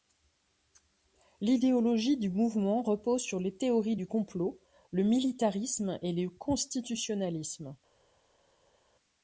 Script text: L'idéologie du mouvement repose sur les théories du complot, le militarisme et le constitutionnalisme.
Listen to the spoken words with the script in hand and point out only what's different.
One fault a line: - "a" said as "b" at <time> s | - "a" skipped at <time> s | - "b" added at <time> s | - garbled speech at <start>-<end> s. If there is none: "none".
none